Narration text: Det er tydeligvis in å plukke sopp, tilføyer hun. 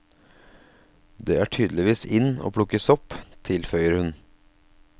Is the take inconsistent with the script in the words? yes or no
no